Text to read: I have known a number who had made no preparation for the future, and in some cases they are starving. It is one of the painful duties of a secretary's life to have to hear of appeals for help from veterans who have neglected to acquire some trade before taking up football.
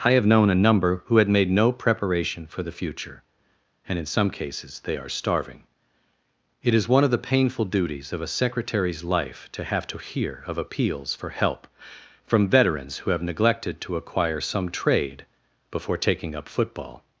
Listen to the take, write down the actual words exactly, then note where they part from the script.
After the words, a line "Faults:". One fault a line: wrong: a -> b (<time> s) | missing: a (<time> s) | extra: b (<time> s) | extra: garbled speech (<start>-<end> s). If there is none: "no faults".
I have known a number who had made no preparation for the future, and in some cases they are starving. It is one of the painful duties of a secretary's life to have to hear of appeals for help from veterans who have neglected to acquire some trade before taking up football.
Faults:
no faults